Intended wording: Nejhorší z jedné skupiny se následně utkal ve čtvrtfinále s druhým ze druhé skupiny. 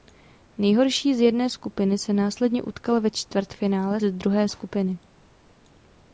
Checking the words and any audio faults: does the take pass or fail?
fail